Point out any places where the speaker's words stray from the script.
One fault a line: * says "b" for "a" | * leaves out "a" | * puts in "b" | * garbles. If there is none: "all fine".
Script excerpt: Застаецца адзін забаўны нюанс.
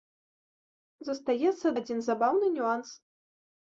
all fine